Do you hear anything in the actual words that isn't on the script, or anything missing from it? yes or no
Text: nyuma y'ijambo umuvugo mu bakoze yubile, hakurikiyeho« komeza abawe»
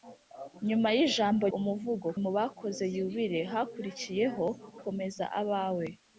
no